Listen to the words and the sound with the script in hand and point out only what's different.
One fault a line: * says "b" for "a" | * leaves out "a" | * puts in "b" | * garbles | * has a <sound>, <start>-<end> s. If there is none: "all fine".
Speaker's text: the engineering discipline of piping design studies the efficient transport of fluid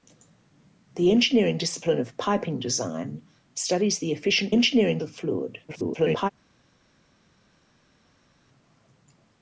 * says "engineering" for "transport"
* garbles